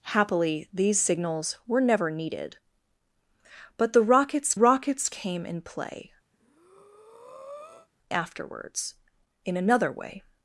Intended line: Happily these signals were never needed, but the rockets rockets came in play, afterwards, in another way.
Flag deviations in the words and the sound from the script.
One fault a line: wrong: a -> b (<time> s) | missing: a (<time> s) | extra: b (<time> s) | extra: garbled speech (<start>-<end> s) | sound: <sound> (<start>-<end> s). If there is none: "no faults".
sound: breath (6.3-7.9 s)